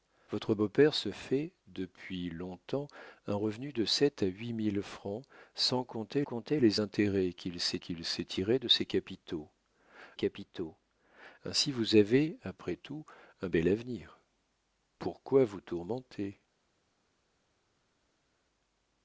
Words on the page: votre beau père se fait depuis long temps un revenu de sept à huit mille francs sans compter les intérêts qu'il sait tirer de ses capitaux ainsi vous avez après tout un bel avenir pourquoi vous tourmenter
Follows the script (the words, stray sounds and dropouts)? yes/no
no